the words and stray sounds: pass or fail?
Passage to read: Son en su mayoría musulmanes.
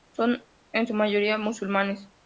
pass